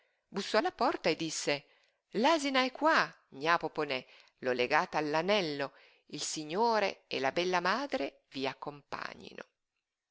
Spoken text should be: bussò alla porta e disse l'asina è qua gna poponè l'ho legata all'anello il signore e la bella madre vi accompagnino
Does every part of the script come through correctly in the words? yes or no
yes